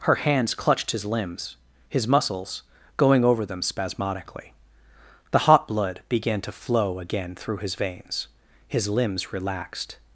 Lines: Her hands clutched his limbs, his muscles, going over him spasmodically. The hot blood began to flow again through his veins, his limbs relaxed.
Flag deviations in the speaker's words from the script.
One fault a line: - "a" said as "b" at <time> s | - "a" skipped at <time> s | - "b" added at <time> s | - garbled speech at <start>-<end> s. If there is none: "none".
- "him" said as "them" at 3.5 s